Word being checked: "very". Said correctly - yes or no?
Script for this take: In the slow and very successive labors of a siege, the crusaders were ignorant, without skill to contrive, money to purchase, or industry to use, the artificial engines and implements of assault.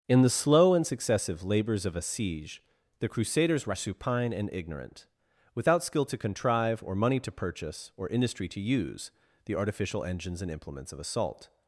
no